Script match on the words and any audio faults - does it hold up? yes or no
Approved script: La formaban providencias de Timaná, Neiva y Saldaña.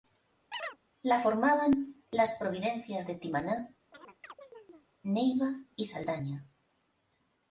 no